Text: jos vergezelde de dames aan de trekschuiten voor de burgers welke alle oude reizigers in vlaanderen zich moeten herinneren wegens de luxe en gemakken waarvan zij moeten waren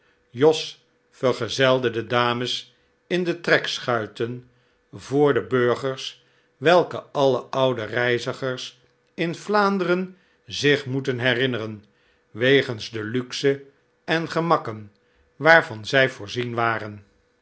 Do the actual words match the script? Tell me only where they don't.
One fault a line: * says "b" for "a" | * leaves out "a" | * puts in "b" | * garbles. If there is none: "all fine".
* says "in" for "aan"
* says "voorzien" for "moeten"